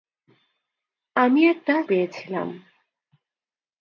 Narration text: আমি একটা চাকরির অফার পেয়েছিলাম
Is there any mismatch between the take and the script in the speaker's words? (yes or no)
yes